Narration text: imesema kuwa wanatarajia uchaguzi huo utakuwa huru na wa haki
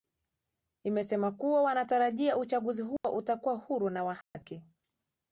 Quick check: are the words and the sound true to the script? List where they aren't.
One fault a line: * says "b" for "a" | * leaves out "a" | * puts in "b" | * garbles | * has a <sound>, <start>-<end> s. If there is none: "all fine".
* has a dropout, 3.0-3.0 s
* has a dropout, 4.2-4.4 s